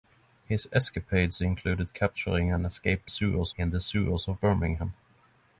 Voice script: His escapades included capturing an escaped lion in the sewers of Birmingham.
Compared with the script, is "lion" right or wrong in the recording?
wrong